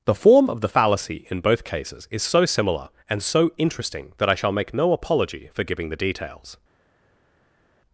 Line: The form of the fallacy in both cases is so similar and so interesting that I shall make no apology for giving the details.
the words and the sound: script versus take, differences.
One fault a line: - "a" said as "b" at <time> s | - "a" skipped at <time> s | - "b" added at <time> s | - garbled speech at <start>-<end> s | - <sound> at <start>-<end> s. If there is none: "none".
none